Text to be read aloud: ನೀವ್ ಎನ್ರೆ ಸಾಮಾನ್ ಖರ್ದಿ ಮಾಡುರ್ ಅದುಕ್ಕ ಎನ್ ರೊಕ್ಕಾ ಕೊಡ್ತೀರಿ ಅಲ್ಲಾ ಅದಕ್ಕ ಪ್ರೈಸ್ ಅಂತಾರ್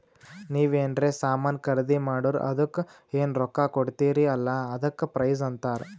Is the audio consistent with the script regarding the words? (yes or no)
yes